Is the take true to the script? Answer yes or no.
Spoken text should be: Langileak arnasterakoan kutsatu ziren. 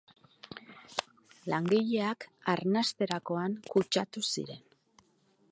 yes